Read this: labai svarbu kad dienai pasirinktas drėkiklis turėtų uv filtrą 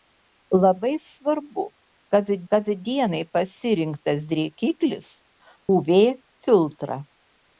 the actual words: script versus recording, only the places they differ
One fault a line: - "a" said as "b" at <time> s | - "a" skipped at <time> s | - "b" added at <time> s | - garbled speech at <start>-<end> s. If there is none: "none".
- "kad" added at 2.5 s
- "turėtų" skipped at 5.1 s